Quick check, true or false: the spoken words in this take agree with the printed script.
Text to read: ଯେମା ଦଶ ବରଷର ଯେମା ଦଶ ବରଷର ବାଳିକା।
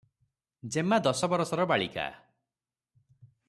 false